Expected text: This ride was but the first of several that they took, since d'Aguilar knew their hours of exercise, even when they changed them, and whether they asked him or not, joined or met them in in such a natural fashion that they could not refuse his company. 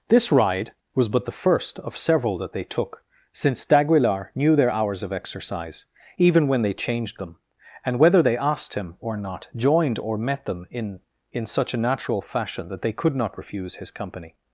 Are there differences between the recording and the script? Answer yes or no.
no